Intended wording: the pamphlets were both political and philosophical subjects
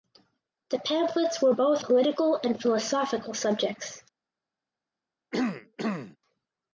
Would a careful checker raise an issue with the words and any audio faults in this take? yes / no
yes